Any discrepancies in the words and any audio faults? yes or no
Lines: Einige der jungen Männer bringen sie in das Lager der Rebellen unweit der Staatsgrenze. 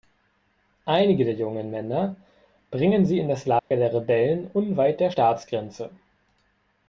yes